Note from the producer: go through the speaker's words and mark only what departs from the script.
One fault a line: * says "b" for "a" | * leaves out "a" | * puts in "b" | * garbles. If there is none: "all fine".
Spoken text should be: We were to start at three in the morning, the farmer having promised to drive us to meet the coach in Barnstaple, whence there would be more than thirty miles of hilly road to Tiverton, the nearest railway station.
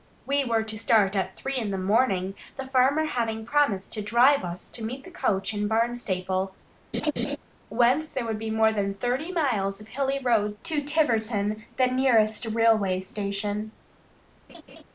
all fine